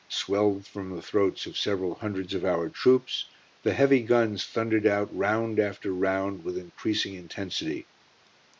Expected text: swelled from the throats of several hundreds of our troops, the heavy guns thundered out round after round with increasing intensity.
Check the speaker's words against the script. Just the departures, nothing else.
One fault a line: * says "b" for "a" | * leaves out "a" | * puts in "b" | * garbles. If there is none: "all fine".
all fine